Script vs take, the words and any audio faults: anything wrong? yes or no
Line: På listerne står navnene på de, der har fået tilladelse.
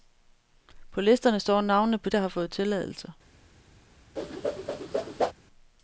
yes